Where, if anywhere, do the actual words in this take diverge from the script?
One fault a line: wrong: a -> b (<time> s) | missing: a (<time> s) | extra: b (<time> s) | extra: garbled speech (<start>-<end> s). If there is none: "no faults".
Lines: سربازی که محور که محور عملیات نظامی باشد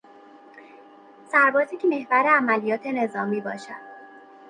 missing: که محور (2.3 s)